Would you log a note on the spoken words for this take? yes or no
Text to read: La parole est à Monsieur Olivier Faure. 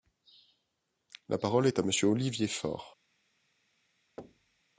no